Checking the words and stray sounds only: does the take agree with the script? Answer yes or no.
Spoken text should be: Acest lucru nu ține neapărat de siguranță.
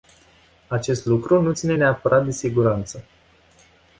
yes